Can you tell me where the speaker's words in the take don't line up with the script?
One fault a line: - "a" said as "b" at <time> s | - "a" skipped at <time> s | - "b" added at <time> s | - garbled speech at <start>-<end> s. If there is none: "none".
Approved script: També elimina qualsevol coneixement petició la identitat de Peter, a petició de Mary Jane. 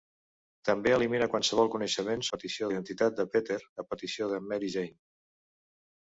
none